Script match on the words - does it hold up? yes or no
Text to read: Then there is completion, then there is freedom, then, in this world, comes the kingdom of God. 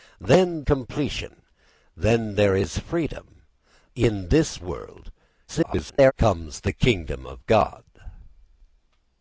no